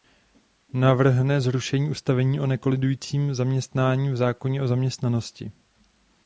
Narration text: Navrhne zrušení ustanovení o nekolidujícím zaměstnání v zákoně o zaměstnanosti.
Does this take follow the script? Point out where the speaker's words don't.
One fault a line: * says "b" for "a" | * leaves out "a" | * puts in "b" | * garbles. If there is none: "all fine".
all fine